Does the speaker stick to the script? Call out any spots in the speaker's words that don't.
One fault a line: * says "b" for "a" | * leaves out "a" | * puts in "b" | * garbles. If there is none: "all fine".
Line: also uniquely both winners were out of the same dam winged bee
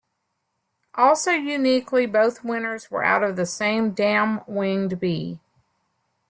all fine